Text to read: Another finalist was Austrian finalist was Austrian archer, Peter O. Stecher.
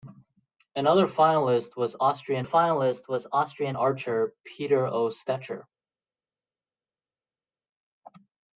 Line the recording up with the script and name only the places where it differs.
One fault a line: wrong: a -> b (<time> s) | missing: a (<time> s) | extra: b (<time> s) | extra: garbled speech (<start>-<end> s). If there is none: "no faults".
no faults